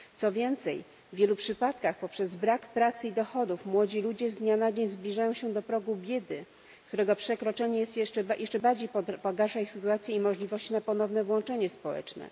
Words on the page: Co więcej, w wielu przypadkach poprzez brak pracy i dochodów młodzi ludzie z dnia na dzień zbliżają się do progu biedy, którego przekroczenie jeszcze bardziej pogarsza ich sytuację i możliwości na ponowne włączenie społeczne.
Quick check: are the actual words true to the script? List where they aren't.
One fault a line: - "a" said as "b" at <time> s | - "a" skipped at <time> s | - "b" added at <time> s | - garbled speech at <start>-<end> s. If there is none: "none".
none